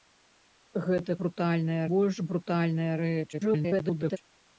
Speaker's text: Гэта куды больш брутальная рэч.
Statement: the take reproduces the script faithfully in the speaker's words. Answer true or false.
false